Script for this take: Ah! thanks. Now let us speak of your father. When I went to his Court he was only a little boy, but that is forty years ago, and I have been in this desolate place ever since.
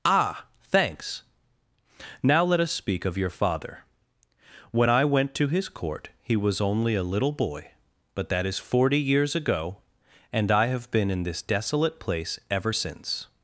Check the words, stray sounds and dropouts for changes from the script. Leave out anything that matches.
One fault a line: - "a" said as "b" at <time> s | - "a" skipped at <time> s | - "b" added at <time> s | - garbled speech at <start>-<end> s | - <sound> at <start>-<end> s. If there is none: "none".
none